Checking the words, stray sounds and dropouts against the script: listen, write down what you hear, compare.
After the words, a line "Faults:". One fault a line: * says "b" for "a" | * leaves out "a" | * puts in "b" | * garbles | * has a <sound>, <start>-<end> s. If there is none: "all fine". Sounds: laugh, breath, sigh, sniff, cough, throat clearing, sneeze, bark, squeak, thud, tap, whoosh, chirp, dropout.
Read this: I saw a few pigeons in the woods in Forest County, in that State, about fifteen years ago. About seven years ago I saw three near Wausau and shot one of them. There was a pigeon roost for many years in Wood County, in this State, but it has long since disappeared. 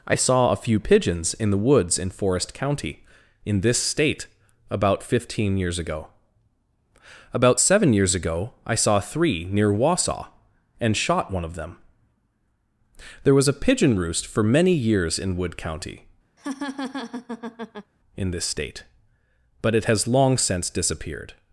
I saw a few pigeons in the woods in Forest County, in this State, about fifteen years ago. About seven years ago I saw three near Wausau and shot one of them. There was a pigeon roost for many years in Wood County, in this State, but it has long since disappeared.
Faults:
* says "this" for "that"
* has a laugh, 16.4-17.9 s